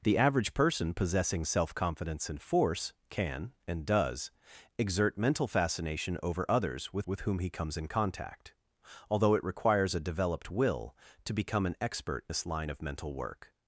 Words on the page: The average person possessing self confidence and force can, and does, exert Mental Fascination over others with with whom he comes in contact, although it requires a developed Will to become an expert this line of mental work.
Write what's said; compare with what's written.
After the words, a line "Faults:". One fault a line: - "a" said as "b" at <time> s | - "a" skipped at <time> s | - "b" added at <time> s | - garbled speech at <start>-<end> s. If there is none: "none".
The average person possessing self confidence and force can, and does, exert Mental Fascination over others with with whom he comes in contact, although it requires a developed Will to become an expert this line of mental work.
Faults:
none